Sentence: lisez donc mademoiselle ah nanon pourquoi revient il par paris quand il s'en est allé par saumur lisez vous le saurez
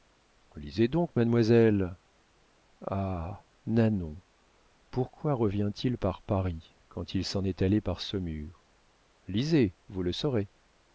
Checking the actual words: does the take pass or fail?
pass